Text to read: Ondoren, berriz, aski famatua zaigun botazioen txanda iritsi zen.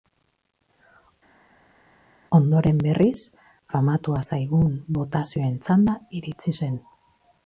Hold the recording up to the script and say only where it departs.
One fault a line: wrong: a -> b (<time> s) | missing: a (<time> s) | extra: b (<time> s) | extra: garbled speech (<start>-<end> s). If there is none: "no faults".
missing: aski (3.2 s)